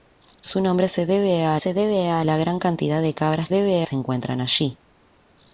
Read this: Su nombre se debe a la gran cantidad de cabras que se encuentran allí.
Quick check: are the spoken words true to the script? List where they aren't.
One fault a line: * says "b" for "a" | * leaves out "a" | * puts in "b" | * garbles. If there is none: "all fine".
* puts in "se debe a"
* says "debe" for "que"